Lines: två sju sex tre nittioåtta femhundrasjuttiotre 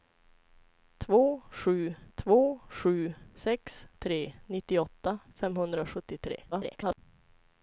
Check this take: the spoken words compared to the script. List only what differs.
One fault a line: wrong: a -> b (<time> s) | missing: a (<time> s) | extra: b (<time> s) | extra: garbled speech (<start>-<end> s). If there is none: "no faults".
extra: två sju (2.1 s)
extra: garbled speech (6.5-7.0 s)